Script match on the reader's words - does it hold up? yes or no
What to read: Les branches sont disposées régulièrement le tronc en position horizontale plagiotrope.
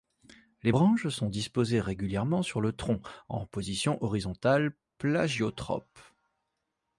no